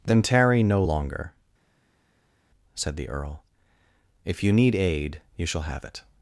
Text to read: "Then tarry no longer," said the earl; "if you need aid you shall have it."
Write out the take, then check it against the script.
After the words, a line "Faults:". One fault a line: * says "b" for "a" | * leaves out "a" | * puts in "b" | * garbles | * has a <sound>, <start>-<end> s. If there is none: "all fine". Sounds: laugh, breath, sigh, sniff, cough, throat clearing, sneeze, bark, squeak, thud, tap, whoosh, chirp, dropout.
"Then tarry no longer," said the earl; "if you need aid you shall have it."
Faults:
all fine